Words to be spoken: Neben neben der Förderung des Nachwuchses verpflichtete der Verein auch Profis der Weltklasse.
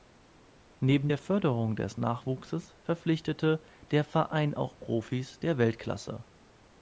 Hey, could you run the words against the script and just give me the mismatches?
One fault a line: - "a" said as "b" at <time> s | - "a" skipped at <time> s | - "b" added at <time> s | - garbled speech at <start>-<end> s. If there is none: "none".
- "neben" skipped at 1.1 s